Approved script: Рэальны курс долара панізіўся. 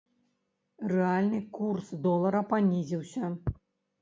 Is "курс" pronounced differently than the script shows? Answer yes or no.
no